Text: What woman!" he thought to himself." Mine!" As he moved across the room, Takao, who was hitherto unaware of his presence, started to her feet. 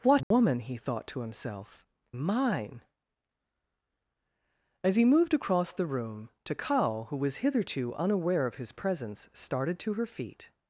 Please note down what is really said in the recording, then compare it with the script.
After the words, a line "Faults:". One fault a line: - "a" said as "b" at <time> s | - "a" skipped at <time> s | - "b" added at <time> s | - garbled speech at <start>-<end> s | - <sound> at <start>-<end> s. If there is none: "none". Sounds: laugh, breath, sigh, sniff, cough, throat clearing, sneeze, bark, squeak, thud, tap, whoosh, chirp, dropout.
What woman!" he thought to himself." Mine!" As he moved across the room, Takao, who was hitherto unaware of his presence, started to her feet.
Faults:
- dropout at 0.2-0.3 s